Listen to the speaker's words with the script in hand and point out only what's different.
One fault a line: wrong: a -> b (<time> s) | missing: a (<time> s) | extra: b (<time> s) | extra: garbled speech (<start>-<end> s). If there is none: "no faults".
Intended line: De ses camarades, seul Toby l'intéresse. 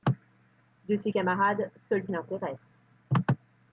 missing: Toby (2.1 s)